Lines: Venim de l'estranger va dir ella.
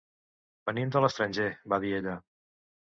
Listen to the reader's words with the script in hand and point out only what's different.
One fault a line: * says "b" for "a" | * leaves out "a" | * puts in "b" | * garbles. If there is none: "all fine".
all fine